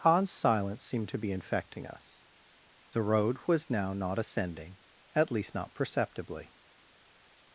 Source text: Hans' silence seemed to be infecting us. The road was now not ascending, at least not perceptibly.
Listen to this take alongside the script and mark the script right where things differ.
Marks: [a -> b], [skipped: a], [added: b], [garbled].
Hans' silence seemed to be infecting us. The road was now not ascending, at least not perceptibly.